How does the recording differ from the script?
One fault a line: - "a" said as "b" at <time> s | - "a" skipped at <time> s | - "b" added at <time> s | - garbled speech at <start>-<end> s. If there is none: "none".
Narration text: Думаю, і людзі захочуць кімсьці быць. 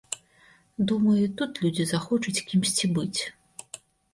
- "тут" added at 1.4 s